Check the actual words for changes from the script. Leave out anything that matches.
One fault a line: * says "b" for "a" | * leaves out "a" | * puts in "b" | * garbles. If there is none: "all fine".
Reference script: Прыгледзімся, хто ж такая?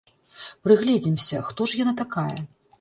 * puts in "яна"